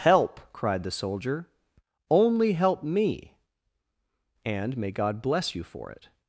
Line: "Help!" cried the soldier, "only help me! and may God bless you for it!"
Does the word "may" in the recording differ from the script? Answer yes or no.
no